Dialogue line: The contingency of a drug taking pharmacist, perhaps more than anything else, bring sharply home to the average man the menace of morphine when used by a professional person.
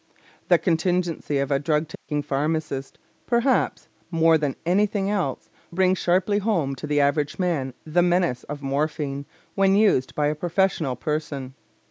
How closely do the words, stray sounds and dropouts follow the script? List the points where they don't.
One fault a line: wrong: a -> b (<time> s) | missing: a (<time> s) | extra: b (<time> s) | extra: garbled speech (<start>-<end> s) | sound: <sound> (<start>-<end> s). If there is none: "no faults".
sound: dropout (1.9-2.1 s)